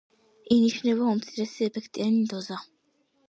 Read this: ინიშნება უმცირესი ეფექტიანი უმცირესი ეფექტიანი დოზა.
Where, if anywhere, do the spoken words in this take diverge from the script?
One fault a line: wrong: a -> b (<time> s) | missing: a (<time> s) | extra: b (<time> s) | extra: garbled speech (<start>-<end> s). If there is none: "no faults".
missing: უმცირესი ეფექტიანი (2.2 s)